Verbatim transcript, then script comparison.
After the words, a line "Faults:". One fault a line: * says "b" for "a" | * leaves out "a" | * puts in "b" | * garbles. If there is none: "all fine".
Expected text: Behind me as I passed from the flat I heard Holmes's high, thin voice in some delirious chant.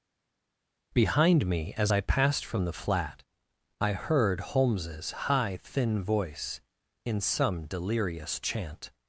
Behind me as I passed from the flat I heard Holmes's high, thin voice in some delirious chant.
Faults:
all fine